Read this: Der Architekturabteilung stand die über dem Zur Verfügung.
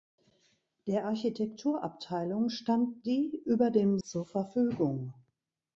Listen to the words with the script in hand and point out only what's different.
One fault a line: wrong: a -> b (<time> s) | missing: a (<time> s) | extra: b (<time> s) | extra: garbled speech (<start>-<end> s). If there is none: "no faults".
no faults